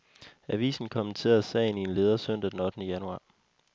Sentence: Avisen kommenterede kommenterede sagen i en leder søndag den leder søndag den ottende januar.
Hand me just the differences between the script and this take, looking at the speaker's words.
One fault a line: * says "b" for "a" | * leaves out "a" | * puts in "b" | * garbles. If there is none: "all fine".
* leaves out "kommenterede"
* leaves out "leder søndag den"